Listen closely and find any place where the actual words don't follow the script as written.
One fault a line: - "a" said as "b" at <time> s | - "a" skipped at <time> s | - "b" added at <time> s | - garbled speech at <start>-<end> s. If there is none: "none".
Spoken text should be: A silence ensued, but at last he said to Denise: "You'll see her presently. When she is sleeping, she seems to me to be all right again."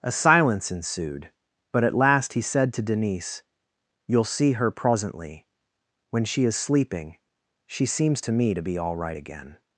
none